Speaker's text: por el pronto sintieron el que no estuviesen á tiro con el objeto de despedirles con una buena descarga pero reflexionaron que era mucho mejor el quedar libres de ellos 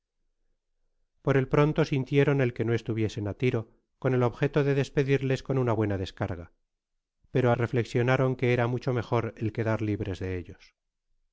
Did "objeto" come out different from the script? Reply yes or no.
no